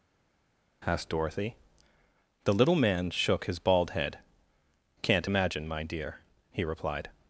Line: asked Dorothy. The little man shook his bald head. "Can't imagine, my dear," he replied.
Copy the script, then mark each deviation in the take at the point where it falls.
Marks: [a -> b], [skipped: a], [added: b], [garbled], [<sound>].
asked Dorothy. The little man shook his bald head. "Can't imagine, my dear," he replied.